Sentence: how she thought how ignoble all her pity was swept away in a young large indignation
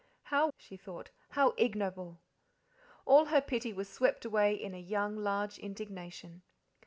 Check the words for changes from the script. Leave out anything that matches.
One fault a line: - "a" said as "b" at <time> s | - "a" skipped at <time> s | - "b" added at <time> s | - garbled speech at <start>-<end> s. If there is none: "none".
none